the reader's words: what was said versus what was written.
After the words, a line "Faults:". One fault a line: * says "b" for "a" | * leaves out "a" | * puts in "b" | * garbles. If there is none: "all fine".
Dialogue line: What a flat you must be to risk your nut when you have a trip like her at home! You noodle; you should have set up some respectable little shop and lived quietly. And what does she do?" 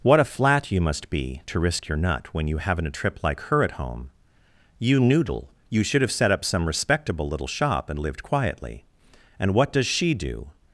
What a flat you must be to risk your nut when you haven't a trip like her at home! You noodle; you should have set up some respectable little shop and lived quietly. And what does she do?"
Faults:
* says "haven't" for "have"